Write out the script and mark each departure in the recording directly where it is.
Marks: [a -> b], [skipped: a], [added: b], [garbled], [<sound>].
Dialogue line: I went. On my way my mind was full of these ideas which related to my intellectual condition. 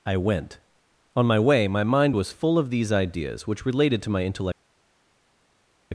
I went. On my way my mind was full of these ideas which related to my intellectual [skipped: condition.]